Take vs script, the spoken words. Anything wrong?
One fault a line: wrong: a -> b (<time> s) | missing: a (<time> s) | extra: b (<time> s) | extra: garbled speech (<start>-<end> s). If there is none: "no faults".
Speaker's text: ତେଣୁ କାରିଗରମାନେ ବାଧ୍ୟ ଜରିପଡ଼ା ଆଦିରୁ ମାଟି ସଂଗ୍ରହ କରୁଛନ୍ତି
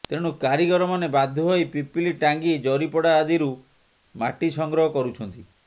extra: ହୋଇ ପିପିଲି ଟାଙ୍ଗୀ (1.5 s)